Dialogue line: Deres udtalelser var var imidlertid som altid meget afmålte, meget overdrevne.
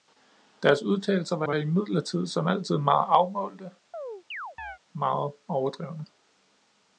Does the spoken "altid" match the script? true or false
true